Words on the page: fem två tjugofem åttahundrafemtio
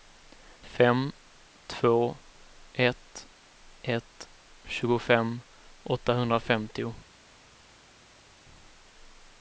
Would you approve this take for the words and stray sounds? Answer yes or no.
no